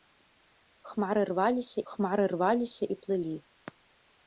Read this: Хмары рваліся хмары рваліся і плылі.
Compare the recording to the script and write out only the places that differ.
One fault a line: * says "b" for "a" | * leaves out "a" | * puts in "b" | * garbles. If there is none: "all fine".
all fine